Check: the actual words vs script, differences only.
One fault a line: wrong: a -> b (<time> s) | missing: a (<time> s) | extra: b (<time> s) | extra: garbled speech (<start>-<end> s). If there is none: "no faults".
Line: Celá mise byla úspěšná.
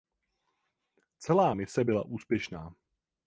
no faults